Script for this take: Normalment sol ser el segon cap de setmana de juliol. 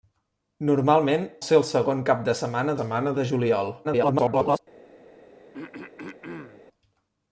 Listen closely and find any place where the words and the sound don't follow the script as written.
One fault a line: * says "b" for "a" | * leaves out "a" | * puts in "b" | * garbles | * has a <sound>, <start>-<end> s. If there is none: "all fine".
* leaves out "sol"
* puts in "setmana"
* garbles
* has a throat clearing, 5.5-6.6 s